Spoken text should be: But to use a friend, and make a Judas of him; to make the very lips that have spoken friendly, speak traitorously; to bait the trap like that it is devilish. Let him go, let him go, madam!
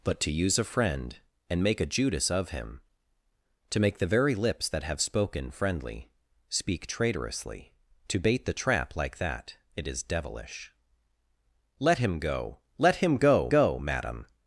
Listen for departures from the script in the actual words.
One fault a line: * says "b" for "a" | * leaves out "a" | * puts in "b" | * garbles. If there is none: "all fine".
* puts in "go"